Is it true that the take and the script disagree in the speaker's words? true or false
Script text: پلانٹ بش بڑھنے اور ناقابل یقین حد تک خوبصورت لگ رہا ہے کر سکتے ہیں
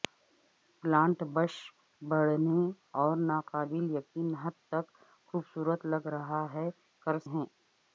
true